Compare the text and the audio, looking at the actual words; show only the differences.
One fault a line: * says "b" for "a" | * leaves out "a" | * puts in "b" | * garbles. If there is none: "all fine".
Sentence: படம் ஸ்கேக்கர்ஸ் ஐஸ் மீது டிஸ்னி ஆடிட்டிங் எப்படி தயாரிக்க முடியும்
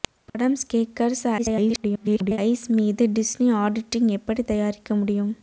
* garbles